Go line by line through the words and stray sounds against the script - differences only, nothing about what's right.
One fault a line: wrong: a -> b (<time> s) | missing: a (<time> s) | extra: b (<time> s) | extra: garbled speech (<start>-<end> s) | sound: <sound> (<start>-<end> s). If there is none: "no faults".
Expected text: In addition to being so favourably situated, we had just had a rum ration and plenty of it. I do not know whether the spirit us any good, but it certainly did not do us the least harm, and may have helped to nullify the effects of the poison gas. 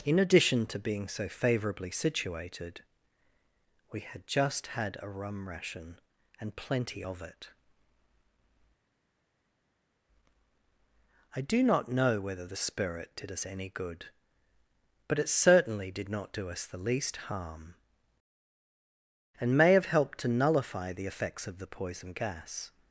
extra: did (13.1 s)